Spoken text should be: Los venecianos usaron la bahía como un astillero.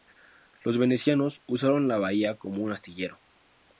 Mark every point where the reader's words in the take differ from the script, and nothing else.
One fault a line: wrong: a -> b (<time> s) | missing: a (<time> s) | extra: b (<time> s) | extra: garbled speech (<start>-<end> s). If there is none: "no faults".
no faults